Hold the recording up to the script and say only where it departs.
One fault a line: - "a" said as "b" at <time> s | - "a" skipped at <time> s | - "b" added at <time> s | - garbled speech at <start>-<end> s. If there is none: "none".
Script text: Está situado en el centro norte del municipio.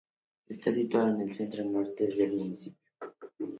none